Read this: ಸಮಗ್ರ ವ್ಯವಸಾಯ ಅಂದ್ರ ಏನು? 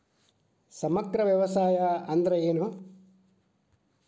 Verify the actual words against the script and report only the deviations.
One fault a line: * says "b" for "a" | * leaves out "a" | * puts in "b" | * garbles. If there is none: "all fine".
all fine